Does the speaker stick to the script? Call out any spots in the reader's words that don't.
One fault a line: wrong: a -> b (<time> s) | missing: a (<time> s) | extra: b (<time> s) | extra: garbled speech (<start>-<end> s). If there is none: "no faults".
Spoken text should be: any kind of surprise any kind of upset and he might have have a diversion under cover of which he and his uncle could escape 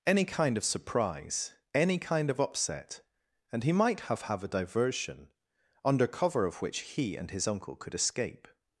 no faults